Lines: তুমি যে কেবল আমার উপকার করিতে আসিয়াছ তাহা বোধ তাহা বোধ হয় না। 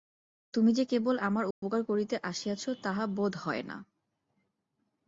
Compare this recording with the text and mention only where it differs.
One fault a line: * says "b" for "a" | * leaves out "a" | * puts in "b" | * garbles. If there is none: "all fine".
* leaves out "তাহা বোধ"